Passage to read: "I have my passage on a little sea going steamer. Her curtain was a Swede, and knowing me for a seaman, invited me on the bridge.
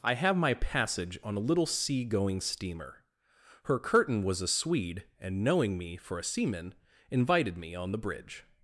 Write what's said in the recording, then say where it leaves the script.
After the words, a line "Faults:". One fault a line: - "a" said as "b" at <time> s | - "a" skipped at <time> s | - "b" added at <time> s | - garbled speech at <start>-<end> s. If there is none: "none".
"I have my passage on a little sea going steamer. Her curtain was a Swede, and knowing me for a seaman, invited me on the bridge.
Faults:
none